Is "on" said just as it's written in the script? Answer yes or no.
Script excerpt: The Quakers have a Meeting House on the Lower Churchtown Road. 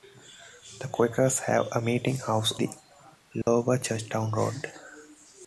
no